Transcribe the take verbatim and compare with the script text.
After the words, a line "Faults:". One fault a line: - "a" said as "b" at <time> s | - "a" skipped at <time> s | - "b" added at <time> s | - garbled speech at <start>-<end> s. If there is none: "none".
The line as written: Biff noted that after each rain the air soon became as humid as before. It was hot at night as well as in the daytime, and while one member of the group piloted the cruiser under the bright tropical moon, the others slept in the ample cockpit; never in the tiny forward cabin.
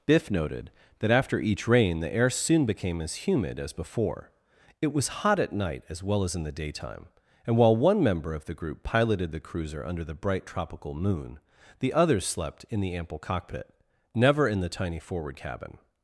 Biff noted that after each rain the air soon became as humid as before. It was hot at night as well as in the daytime, and while one member of the group piloted the cruiser under the bright tropical moon, the others slept in the ample cockpit; never in the tiny forward cabin.
Faults:
none